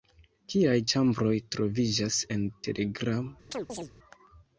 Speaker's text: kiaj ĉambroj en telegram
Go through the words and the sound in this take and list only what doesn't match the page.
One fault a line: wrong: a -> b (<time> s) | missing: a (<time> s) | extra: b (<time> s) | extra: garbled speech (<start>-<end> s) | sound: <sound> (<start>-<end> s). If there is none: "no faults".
extra: troviĝas (1.6 s)
sound: chirp (3.5-3.9 s)